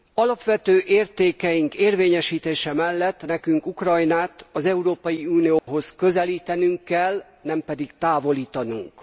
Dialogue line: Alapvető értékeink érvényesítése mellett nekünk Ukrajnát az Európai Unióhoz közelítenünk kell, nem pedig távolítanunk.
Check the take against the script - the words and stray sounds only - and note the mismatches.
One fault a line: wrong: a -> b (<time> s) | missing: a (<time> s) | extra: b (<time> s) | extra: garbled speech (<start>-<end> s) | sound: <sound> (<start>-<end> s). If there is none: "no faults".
sound: dropout (5.6-5.7 s)